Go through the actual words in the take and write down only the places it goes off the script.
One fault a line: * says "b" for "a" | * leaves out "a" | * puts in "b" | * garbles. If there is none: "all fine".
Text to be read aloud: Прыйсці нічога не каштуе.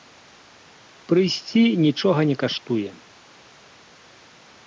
all fine